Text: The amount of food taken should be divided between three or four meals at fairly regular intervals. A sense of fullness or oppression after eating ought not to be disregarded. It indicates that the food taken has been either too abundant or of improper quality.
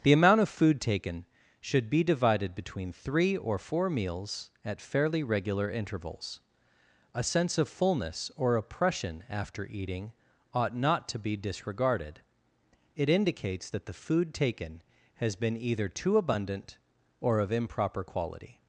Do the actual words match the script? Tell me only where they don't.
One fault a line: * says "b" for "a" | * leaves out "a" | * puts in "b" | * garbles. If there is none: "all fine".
all fine